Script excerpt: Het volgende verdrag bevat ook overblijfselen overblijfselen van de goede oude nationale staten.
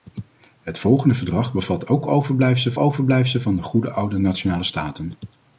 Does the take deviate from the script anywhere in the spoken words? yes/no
no